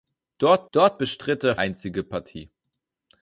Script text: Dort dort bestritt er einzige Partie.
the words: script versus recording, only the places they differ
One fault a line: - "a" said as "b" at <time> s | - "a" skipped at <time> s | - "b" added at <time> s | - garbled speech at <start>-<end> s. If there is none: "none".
none